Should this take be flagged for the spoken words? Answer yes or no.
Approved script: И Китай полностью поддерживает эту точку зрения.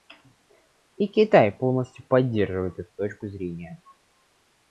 no